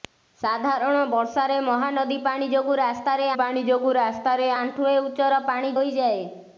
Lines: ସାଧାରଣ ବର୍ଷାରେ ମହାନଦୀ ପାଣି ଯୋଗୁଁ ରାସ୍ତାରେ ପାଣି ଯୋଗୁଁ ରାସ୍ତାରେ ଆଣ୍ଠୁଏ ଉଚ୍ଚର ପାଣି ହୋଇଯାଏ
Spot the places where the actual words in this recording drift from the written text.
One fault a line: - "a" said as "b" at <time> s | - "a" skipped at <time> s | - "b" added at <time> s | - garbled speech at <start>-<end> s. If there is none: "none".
none